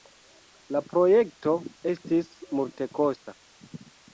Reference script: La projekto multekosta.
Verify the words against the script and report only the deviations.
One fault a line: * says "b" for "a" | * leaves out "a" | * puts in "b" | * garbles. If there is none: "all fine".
* puts in "estis"